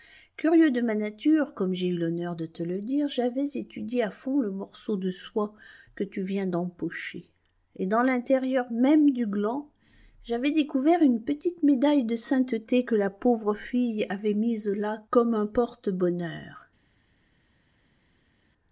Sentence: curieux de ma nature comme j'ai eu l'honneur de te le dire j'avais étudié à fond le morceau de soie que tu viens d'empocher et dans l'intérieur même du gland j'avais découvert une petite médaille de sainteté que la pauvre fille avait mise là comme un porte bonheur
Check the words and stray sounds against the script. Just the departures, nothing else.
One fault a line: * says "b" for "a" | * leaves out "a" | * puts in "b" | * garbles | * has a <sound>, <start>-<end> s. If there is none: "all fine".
all fine